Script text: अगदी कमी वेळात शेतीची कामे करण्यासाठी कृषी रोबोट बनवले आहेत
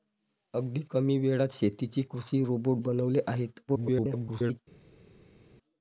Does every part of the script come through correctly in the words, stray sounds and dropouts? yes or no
no